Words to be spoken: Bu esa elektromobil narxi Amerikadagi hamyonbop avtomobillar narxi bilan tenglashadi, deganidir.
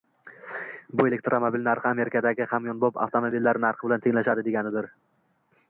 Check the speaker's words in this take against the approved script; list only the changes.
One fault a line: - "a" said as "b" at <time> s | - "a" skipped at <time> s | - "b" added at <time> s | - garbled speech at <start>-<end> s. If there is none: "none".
- "esa" skipped at 1.1 s